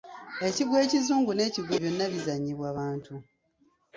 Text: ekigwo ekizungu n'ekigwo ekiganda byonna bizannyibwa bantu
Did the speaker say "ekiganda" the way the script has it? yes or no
no